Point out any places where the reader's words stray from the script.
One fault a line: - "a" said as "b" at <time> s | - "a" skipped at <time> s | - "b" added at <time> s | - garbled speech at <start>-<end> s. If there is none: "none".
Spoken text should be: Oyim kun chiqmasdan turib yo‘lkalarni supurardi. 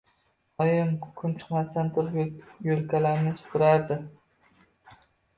none